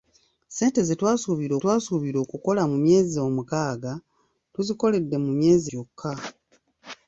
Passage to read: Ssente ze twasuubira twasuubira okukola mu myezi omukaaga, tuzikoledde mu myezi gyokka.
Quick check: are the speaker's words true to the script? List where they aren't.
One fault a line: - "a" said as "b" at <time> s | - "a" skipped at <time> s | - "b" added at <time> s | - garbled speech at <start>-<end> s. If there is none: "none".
none